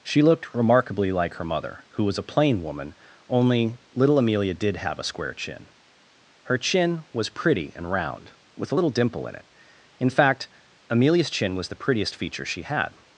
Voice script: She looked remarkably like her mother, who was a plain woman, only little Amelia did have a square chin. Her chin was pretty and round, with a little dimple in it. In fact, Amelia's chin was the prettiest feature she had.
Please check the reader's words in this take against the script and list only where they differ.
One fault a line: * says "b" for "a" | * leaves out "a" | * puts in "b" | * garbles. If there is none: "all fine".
all fine